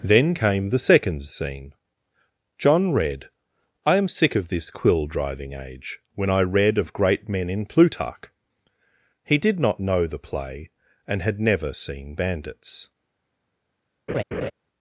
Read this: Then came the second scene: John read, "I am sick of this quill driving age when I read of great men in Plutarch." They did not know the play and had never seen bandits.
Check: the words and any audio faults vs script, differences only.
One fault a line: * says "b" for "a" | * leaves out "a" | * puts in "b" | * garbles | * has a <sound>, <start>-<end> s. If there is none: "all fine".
* says "He" for "They"
* has a laugh, 14.1-14.5 s